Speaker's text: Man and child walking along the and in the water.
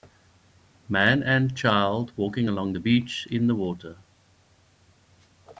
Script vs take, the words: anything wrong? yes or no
yes